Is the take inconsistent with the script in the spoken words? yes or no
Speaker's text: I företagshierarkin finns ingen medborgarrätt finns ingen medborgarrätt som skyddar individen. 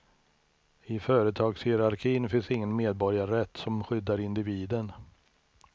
yes